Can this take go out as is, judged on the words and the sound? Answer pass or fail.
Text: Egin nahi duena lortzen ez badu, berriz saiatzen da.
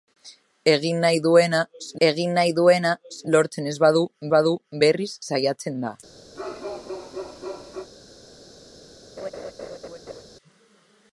fail